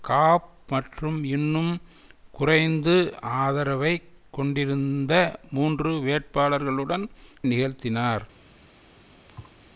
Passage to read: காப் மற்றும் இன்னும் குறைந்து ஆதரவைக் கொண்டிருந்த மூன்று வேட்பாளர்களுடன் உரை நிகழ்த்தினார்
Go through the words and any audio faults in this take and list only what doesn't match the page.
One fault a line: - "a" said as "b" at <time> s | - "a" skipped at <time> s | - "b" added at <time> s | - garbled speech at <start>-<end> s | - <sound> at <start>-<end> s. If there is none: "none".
- "உரை" skipped at 7.0 s
- thud at 9.3-9.6 s